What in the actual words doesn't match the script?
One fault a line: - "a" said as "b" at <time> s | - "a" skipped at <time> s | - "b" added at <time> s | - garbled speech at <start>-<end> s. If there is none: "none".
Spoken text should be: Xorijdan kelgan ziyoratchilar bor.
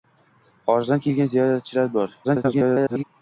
- garbled speech at 2.2-3.0 s